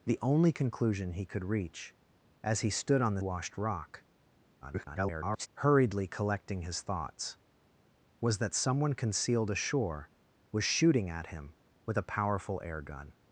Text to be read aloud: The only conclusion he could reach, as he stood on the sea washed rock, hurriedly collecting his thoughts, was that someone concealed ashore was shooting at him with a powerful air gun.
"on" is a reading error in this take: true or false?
false